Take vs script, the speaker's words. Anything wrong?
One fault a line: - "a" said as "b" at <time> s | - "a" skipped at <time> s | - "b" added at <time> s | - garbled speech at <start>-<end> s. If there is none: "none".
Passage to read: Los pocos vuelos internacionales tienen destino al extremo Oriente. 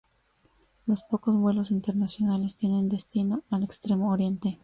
none